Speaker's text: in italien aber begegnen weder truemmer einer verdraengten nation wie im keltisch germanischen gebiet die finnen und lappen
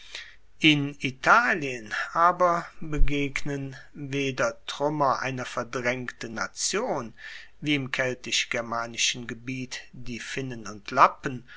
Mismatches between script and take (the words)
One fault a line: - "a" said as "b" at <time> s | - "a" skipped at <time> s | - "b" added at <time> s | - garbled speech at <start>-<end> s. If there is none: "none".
none